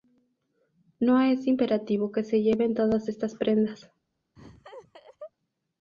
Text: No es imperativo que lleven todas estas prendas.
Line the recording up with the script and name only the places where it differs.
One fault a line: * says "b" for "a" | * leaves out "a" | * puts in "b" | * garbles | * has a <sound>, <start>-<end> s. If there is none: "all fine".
* puts in "se"
* has a laugh, 4.4-5.3 s